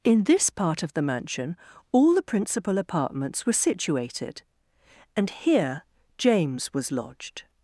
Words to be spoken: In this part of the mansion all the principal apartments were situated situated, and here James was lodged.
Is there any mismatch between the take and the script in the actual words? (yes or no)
yes